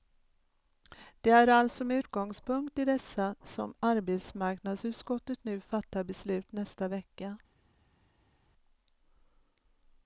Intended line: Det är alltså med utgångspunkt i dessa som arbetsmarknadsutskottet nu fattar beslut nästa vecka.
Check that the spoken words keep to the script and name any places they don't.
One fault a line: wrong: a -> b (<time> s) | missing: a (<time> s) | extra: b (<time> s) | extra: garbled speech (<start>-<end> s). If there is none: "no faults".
no faults